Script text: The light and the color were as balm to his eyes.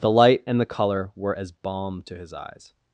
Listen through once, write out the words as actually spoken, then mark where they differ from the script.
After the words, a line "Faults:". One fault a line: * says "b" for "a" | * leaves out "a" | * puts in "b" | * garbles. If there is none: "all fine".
The light and the color were as balm to his eyes.
Faults:
all fine